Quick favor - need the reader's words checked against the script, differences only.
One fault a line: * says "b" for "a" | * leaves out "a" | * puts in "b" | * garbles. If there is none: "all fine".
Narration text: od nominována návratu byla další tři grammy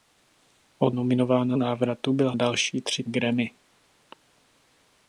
all fine